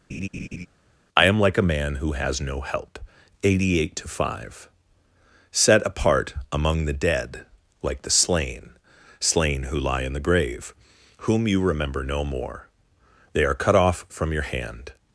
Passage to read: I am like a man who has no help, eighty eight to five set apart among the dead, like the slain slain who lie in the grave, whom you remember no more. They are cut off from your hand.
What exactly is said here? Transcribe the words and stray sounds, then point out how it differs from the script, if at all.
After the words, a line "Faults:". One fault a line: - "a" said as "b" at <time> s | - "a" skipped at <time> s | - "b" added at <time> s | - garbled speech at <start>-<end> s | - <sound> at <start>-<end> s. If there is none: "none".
I am like a man who has no help, eighty eight to five set apart among the dead, like the slain slain who lie in the grave, whom you remember no more. They are cut off from your hand.
Faults:
- laugh at 0.1-0.7 s